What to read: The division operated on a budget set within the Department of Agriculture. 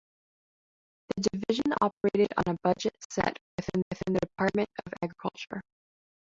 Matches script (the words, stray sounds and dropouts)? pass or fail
fail